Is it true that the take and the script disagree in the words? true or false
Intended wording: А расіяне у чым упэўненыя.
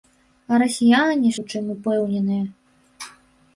false